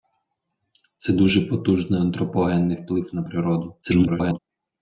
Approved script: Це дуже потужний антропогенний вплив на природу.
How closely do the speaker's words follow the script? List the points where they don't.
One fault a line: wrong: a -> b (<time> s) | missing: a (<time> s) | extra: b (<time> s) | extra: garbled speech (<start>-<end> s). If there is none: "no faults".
extra: garbled speech (3.8-4.4 s)